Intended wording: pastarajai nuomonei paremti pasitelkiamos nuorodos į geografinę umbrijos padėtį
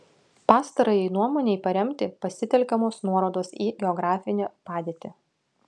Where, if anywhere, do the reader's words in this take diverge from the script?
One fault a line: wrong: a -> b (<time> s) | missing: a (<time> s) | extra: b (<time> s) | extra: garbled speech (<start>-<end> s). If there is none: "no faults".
missing: umbrijos (4.5 s)